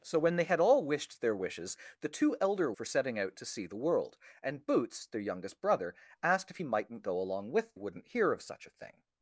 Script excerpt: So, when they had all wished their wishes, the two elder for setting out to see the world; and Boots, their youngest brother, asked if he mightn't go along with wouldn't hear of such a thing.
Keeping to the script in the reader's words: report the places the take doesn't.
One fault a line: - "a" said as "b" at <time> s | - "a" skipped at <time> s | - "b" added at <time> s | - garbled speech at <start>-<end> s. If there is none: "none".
none